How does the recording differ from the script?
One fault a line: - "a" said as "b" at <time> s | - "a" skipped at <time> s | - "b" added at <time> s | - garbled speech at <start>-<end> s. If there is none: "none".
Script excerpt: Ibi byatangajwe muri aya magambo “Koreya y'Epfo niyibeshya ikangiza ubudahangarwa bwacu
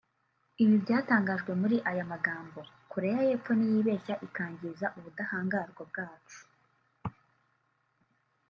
none